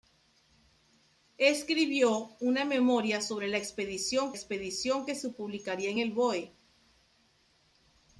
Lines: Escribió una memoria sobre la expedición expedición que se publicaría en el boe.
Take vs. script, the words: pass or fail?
pass